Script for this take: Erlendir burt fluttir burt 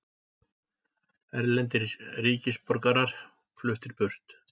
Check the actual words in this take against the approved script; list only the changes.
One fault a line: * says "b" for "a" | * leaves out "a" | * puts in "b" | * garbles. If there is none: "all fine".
* says "ríkisborgarar" for "burt"